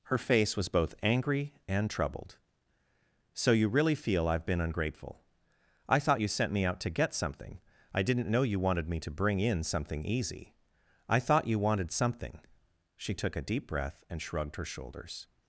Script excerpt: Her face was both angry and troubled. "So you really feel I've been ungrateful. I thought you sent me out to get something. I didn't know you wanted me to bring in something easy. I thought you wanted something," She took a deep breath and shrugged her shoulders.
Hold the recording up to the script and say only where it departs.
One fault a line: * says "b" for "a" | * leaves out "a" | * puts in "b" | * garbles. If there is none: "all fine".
all fine